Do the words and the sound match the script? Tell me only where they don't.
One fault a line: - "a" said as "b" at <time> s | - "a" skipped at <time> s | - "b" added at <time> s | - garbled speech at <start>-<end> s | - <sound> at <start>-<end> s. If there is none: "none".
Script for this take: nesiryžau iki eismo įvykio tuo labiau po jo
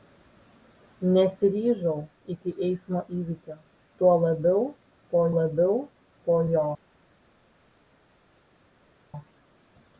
- "labiau po" added at 5.4 s